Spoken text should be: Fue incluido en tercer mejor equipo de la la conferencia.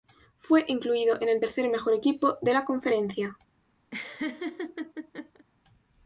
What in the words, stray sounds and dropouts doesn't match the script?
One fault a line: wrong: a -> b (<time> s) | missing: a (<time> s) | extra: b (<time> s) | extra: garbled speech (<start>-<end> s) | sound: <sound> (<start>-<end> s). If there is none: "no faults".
extra: el (1.3 s)
missing: la (2.6 s)
sound: laugh (3.9-5.5 s)